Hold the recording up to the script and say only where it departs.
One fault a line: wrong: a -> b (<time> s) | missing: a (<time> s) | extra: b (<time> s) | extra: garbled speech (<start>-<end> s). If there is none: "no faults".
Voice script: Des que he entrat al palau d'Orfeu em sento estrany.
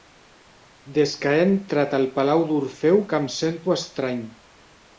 extra: que (3.1 s)